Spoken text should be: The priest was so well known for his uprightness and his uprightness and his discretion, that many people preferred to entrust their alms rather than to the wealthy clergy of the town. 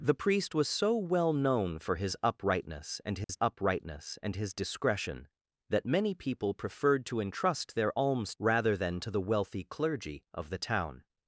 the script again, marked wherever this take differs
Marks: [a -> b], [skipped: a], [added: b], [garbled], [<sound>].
The priest was so well known for his uprightness and his [dropout] uprightness and his discretion, that many people preferred to entrust their alms rather than to the wealthy clergy of the town.